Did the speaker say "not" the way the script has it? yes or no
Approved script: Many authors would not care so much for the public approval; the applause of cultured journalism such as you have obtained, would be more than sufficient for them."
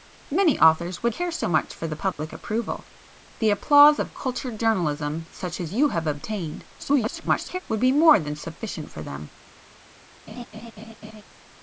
no